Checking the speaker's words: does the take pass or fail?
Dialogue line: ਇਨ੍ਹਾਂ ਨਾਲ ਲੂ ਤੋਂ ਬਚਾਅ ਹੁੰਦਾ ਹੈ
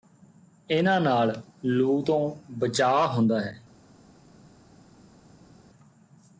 pass